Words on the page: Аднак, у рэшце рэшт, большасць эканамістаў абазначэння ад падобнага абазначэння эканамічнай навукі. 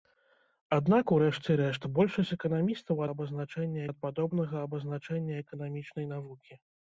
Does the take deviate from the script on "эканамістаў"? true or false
false